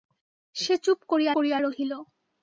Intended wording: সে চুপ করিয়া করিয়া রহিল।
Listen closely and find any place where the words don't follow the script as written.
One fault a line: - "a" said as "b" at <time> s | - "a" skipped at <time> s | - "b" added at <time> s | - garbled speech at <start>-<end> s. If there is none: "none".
none